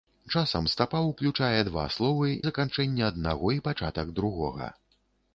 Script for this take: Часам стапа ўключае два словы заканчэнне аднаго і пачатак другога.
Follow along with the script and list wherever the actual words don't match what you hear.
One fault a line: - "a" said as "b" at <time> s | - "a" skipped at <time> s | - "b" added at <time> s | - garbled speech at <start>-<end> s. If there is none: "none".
none